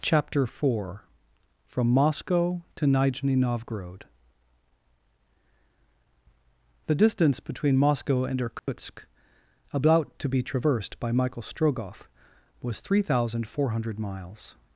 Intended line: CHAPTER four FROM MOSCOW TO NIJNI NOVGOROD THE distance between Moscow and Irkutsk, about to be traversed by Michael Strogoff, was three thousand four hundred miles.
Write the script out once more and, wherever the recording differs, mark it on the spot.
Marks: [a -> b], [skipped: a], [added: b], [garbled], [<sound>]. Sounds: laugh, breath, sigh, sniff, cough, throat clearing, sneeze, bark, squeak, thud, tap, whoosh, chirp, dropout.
CHAPTER four FROM MOSCOW TO NIJNI NOVGOROD THE distance between Moscow and Irkutsk, [dropout] about to be traversed by Michael Strogoff, was three thousand four hundred miles.